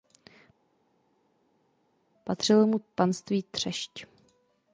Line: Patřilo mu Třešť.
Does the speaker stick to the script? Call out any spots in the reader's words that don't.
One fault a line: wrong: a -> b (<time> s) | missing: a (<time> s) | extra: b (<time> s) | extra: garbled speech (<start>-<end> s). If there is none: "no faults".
extra: panství (2.9 s)